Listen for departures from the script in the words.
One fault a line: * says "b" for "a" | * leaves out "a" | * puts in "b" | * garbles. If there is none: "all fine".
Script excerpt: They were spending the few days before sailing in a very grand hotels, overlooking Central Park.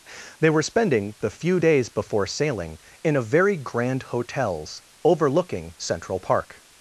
all fine